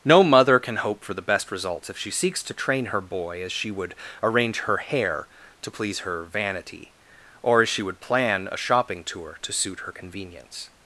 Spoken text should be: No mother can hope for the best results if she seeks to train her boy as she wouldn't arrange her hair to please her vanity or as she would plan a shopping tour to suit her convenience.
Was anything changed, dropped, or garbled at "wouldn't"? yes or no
yes